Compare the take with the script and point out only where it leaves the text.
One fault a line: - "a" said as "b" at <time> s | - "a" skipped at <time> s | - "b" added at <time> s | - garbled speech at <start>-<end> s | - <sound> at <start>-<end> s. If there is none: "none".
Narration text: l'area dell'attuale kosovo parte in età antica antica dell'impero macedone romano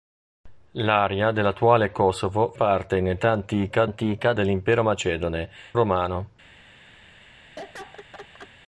- laugh at 7.6-8.5 s